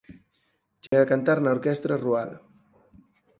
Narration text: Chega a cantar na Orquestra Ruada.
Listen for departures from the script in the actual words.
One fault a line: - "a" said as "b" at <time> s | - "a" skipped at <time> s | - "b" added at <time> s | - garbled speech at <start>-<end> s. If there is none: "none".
none